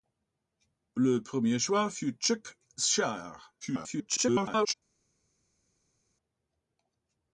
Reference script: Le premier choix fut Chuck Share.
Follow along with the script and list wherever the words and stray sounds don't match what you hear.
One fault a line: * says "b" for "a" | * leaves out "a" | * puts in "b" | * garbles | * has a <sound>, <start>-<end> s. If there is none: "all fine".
* garbles